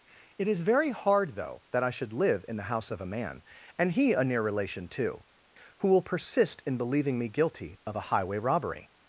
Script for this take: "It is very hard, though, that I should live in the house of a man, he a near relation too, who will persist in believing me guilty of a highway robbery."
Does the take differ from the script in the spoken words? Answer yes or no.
yes